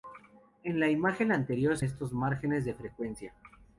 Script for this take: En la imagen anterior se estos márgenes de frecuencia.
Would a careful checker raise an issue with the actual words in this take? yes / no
no